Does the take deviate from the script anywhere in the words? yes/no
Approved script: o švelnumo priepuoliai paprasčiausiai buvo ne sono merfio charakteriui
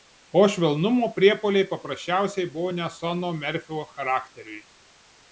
no